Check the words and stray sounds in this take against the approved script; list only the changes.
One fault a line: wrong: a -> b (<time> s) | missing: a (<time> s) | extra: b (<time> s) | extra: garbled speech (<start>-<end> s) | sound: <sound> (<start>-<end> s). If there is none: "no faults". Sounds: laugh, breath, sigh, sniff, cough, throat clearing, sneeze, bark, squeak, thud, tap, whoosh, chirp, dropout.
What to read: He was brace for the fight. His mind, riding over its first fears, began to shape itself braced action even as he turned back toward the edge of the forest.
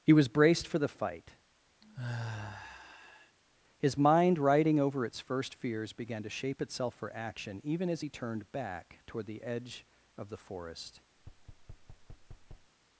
wrong: brace -> braced (0.3 s)
sound: sigh (1.8-3.4 s)
wrong: braced -> for (7.0 s)
sound: thud (11.2-12.7 s)